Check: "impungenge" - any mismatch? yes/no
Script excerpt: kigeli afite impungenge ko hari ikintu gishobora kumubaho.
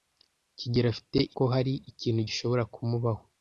yes